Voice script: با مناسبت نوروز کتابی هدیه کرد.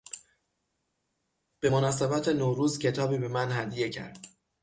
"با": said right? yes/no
no